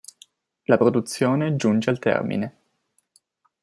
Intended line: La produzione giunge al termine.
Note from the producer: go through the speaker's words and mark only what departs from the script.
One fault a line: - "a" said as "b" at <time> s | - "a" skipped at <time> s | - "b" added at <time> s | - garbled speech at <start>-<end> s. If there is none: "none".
none